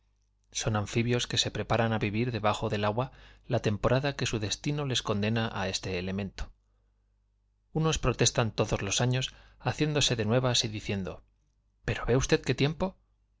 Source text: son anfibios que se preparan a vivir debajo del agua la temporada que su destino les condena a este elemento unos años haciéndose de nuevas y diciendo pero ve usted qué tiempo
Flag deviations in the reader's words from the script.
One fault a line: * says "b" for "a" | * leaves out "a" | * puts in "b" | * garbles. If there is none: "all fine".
* puts in "protestan todos los"